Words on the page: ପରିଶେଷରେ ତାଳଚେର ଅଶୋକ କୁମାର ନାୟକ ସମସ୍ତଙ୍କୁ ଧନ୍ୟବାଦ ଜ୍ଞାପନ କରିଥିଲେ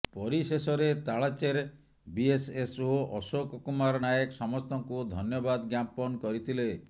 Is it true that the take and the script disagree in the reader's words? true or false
true